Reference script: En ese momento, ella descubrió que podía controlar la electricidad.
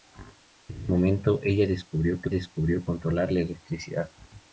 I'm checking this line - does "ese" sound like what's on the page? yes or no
no